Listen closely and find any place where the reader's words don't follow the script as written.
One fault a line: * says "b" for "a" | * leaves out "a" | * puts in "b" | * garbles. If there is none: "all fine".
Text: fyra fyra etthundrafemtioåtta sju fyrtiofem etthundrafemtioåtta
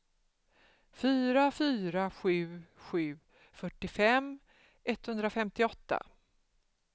* says "sju" for "etthundrafemtioåtta"